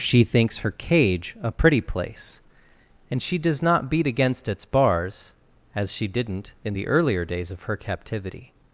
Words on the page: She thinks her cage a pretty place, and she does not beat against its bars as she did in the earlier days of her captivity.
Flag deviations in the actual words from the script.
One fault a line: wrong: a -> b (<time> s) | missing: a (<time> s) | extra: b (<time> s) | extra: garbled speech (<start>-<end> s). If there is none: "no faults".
wrong: did -> didn't (6.1 s)